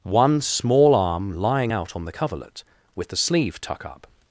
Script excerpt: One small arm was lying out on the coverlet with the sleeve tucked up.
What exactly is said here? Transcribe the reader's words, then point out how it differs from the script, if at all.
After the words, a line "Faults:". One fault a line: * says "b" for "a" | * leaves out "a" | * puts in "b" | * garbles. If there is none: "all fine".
One small arm lying out on the coverlet with the sleeve tuck up.
Faults:
* leaves out "was"
* says "tuck" for "tucked"